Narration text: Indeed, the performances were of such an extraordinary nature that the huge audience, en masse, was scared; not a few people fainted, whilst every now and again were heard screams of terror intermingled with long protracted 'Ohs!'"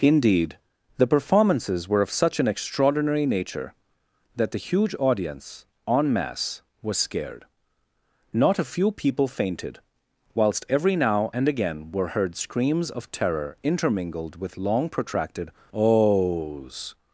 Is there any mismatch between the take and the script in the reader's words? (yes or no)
no